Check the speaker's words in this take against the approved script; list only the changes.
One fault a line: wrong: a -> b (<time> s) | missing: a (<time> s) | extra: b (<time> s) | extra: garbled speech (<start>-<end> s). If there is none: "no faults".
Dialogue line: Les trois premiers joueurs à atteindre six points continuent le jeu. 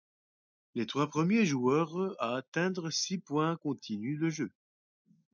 no faults